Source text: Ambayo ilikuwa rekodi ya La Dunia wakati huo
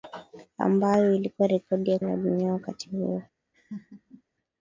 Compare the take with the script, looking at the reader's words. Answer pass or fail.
pass